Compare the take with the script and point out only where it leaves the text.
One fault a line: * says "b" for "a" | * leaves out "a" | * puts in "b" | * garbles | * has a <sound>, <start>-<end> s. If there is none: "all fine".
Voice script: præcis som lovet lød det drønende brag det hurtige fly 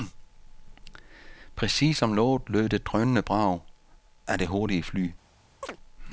* puts in "af"
* has a chirp, 5.6-5.8 s